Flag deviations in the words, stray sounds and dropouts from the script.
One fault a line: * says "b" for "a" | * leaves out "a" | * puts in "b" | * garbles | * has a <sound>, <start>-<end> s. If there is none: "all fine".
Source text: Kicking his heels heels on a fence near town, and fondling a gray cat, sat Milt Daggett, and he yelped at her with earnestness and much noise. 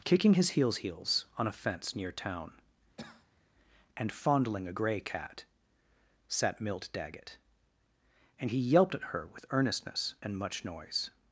* has a cough, 3.0-3.4 s